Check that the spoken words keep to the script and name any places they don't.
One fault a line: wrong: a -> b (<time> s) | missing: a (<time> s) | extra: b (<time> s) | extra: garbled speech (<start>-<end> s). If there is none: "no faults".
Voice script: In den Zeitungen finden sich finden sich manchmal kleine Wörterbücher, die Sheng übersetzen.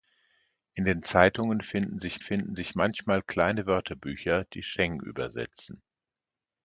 no faults